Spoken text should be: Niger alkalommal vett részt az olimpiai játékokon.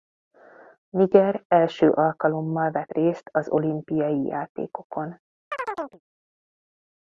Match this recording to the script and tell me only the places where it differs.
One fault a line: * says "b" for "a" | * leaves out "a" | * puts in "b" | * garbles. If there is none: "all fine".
* puts in "első"